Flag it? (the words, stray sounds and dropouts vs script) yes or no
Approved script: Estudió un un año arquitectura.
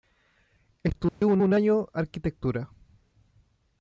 yes